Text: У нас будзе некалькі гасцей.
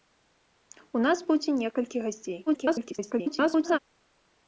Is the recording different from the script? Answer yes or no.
yes